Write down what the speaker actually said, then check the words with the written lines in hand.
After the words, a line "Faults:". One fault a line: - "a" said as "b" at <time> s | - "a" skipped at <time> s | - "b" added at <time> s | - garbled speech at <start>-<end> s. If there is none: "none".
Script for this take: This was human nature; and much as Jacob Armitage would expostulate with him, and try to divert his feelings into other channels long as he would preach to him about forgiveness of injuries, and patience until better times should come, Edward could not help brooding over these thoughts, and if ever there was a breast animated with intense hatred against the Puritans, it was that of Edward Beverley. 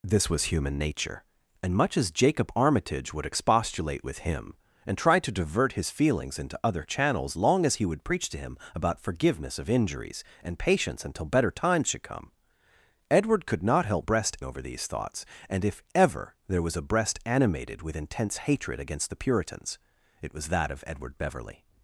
This was human nature; and much as Jacob Armitage would expostulate with him, and try to divert his feelings into other channels long as he would preach to him about forgiveness of injuries, and patience until better times should come, Edward could not help breast over these thoughts, and if ever there was a breast animated with intense hatred against the Puritans, it was that of Edward Beverley.
Faults:
- "brooding" said as "breast" at 14.0 s